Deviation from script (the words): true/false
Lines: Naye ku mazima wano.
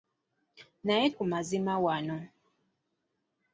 false